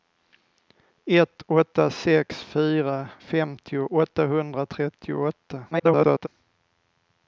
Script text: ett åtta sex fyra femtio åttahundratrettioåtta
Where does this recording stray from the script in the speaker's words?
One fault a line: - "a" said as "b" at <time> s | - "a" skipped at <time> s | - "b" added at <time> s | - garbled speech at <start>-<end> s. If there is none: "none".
- garbled speech at 5.7-6.3 s